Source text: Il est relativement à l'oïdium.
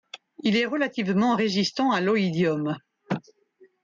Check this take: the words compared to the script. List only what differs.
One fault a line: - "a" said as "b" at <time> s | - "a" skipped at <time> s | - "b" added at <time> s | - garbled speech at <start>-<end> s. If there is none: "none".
- "résistant" added at 1.3 s